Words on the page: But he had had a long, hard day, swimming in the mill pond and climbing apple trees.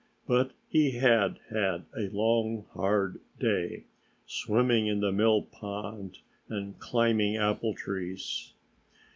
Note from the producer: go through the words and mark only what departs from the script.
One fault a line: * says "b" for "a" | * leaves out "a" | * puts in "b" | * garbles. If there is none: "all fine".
all fine